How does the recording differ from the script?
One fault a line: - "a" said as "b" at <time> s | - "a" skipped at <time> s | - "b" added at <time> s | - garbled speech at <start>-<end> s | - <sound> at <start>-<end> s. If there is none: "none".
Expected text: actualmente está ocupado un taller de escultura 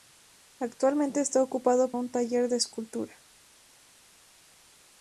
none